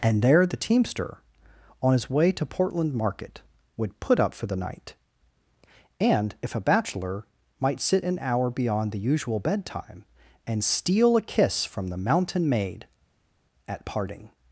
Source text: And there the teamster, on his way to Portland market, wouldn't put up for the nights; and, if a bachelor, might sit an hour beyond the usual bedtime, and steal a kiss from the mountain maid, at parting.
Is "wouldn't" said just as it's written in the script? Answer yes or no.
no